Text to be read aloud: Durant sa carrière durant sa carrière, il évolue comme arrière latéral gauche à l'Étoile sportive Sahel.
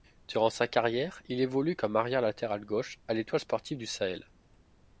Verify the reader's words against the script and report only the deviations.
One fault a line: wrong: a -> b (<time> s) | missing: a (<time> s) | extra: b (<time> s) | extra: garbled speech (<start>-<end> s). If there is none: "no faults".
missing: durant sa carrière (1.2 s)
extra: du (3.8 s)